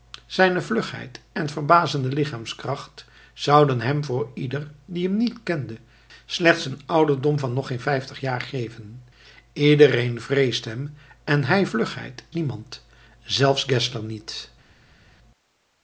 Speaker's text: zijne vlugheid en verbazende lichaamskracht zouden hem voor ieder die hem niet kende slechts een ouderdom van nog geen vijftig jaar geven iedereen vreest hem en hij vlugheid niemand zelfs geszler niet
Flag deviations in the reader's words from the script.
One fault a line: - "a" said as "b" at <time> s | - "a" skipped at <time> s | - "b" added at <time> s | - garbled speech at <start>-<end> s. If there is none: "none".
none